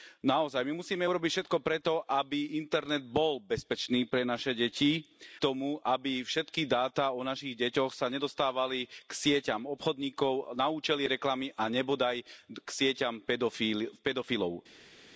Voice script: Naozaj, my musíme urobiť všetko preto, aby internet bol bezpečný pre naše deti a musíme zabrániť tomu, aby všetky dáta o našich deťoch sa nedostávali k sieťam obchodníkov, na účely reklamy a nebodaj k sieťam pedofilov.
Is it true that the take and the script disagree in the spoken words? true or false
true